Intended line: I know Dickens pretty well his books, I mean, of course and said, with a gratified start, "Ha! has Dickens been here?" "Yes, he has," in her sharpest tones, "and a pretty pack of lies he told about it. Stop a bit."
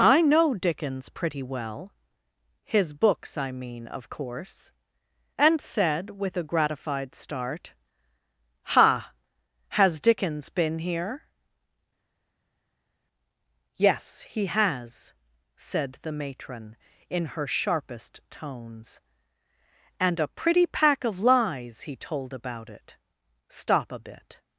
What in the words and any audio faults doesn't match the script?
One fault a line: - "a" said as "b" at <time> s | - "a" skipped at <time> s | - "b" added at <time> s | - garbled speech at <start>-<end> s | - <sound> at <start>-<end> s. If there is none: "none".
- "said the matron" added at 15.6 s